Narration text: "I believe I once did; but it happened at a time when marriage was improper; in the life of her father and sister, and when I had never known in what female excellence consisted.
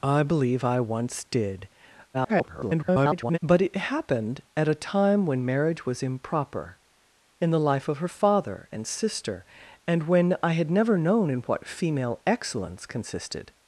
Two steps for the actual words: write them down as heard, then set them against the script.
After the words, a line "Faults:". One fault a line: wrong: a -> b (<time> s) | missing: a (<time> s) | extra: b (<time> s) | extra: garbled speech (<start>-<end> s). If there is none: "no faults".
"I believe I once did; [garbled] but it happened at a time when marriage was improper; in the life of her father and sister, and when I had never known in what female excellence consisted.
Faults:
extra: garbled speech (2.1-3.4 s)